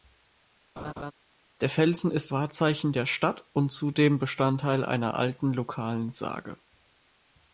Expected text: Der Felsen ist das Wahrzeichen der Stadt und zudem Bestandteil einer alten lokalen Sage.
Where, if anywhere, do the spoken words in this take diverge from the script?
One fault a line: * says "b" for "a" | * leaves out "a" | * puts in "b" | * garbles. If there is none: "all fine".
* leaves out "das"